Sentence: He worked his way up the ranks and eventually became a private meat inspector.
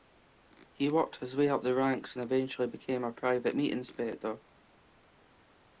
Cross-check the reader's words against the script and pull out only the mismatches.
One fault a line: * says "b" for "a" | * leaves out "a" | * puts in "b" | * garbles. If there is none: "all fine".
all fine